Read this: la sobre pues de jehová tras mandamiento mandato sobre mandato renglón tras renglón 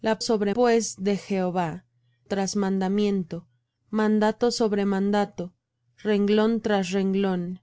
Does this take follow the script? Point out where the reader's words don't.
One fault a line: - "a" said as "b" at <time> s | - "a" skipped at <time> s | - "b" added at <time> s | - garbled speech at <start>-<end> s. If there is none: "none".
none